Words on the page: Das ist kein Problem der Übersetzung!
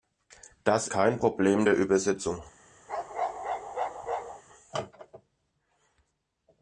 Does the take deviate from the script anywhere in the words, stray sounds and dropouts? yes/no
yes